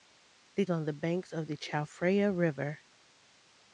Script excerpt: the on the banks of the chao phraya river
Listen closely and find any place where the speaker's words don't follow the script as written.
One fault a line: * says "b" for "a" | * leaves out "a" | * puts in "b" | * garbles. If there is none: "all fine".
all fine